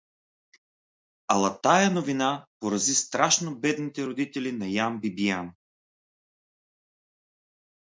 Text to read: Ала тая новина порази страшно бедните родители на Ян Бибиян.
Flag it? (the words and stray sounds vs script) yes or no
no